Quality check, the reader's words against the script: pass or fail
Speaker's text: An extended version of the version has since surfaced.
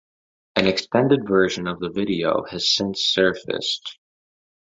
fail